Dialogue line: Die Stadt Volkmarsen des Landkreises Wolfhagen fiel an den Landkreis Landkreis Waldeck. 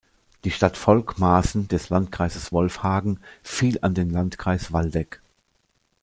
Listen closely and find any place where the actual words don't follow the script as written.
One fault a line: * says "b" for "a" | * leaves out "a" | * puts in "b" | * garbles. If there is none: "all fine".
* leaves out "Landkreis"